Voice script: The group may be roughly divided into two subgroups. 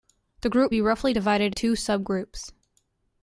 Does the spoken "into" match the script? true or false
false